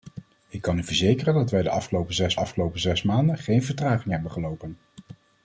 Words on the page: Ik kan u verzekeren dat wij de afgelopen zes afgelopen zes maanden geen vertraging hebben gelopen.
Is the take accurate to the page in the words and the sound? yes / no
yes